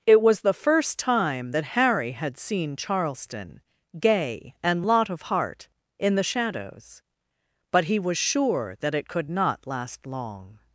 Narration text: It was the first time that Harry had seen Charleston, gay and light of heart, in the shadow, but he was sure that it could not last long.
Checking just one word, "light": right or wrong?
wrong